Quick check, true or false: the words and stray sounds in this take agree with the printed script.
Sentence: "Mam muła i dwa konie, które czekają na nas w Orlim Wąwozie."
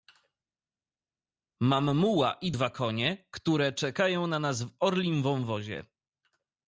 true